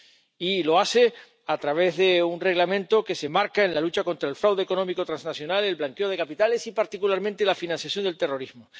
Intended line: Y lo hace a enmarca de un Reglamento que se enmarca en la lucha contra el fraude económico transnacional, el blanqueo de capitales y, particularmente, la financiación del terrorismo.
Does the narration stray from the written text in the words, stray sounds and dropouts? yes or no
yes